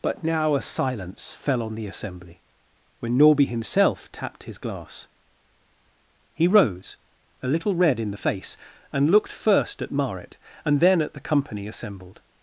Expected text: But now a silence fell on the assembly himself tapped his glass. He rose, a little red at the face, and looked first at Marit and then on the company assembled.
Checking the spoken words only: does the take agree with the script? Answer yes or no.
no